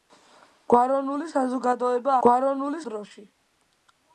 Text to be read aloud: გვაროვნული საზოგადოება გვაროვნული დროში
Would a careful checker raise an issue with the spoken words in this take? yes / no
no